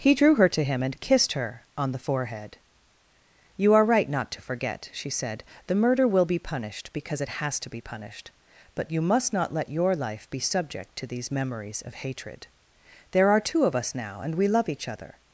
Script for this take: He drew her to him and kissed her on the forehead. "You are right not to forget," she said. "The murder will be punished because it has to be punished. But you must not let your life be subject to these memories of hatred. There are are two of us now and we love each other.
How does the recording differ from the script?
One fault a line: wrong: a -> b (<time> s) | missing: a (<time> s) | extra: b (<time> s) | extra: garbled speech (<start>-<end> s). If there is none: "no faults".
missing: are (13.4 s)